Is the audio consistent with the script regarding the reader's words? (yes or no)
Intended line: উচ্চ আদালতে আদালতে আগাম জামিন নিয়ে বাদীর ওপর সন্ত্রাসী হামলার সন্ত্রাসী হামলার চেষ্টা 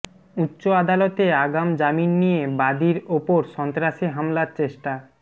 no